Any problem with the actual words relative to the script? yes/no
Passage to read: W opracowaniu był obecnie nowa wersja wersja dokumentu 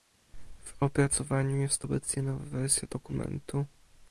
yes